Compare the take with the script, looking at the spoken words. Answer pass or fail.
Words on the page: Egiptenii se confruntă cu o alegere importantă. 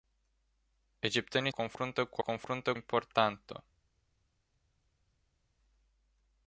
fail